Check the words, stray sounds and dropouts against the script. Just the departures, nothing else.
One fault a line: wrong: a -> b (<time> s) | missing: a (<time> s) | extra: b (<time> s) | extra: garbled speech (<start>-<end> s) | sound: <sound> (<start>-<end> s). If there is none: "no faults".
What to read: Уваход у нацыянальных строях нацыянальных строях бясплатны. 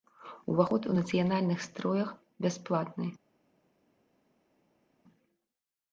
missing: нацыянальных строях (2.1 s)